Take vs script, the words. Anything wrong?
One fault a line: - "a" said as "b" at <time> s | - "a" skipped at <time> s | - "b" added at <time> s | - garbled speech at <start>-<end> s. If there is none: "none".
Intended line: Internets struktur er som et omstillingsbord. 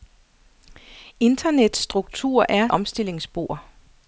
- "som et" skipped at 2.7 s